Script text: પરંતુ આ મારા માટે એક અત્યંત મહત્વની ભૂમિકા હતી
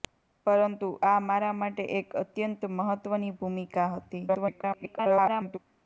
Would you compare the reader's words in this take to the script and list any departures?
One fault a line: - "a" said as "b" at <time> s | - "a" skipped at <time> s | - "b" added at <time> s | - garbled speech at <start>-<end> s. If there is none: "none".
- garbled speech at 4.3-5.6 s